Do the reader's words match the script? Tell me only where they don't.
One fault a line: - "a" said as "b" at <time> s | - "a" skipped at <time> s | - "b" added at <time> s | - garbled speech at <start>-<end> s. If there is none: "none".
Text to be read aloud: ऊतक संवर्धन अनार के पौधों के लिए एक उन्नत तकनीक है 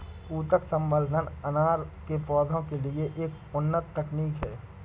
none